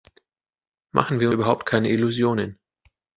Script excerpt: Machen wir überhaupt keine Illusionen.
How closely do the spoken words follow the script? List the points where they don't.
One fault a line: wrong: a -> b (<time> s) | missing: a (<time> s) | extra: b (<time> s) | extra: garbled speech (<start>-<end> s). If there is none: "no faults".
no faults